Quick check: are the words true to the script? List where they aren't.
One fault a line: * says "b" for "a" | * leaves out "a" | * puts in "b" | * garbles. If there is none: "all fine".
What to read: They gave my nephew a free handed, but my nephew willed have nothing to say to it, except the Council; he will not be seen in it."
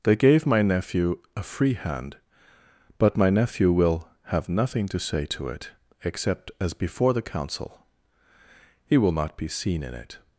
* says "hand" for "handed"
* says "will" for "willed"
* puts in "as before"